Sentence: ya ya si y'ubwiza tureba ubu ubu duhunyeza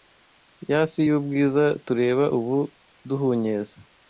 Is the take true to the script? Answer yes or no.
no